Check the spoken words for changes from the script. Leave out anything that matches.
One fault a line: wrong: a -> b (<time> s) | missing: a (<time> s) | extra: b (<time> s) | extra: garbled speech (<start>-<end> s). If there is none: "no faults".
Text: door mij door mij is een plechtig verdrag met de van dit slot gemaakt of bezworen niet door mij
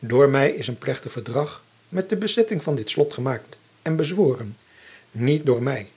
missing: door mij (0.5 s)
extra: bezetting (2.2 s)
wrong: of -> en (3.8 s)